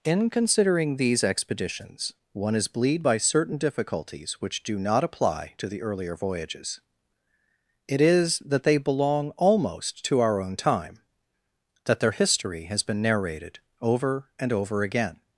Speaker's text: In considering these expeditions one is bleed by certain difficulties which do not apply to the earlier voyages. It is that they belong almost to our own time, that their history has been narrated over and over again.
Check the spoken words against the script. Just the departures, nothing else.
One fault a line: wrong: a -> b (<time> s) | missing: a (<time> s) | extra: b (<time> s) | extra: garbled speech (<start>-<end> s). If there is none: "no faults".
no faults